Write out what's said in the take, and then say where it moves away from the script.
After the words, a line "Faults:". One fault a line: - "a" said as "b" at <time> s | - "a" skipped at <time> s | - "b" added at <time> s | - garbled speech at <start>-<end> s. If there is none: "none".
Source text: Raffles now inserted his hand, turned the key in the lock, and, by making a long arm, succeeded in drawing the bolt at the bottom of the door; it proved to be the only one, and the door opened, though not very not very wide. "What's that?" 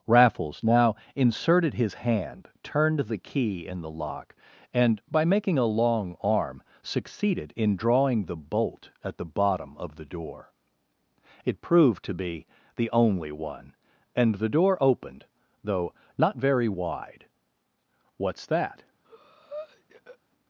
Raffles now inserted his hand, turned the key in the lock, and, by making a long arm, succeeded in drawing the bolt at the bottom of the door; it proved to be the only one, and the door opened, though not very wide. "What's that?"
Faults:
- "not very" skipped at 16.7 s